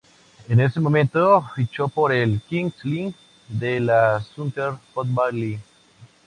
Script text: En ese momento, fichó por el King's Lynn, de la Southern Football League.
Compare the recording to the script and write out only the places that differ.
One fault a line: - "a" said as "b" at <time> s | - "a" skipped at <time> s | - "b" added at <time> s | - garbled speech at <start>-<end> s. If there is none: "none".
none